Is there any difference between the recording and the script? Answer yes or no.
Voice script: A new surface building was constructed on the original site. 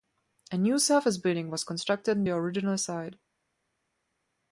no